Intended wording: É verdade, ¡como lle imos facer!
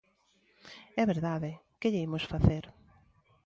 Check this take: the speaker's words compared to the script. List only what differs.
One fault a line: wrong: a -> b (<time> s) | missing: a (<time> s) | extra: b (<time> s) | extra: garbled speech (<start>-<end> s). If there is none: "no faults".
wrong: como -> que (1.8 s)